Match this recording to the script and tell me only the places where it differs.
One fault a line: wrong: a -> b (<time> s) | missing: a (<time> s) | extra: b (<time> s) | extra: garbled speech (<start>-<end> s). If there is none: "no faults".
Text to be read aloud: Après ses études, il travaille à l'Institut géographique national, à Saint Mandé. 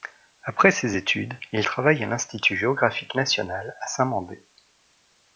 no faults